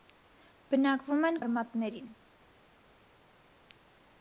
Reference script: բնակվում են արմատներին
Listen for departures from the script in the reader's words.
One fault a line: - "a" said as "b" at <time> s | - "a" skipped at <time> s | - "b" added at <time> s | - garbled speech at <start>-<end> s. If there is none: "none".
none